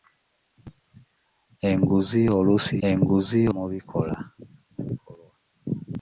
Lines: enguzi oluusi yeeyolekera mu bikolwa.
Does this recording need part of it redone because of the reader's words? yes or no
yes